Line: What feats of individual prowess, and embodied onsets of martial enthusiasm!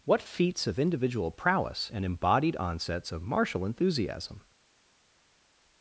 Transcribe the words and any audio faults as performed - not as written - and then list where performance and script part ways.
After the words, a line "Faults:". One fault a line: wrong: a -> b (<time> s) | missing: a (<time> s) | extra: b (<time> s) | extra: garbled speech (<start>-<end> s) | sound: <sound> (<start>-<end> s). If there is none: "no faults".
What feats of individual prowess, and embodied onsets of martial enthusiasm!
Faults:
no faults